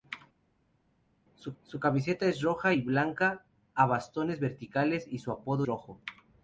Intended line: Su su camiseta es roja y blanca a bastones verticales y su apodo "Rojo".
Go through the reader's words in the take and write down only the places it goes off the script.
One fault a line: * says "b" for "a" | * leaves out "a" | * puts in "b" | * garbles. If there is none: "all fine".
all fine